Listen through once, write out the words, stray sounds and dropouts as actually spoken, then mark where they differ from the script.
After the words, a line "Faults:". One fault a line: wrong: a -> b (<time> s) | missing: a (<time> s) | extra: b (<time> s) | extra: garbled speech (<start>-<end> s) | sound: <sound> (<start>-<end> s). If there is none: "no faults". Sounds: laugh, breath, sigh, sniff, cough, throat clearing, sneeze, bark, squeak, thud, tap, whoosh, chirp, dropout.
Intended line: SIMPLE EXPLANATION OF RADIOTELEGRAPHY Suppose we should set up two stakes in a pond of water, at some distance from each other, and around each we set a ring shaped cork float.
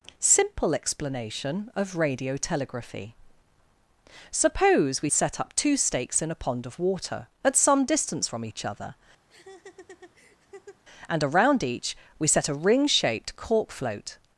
SIMPLE EXPLANATION OF RADIOTELEGRAPHY Suppose we set up two stakes in a pond of water, at some distance from each other, and around each we set a ring shaped cork float.
Faults:
missing: should (5.1 s)
sound: laugh (9.3-10.8 s)